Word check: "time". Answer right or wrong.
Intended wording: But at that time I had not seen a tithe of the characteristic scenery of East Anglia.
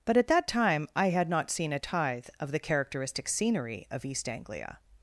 right